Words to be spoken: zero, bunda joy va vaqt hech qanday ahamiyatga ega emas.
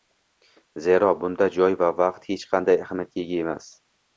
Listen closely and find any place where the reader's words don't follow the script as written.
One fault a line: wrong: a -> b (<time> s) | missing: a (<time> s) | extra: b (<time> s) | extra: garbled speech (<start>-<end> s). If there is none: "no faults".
no faults